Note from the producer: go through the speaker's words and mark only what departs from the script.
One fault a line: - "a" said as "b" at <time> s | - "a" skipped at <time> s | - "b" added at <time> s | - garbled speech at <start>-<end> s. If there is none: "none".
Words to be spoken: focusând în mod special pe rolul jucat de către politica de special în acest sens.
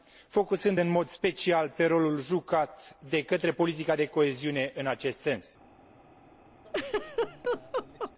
- "special" said as "coeziune" at 4.0 s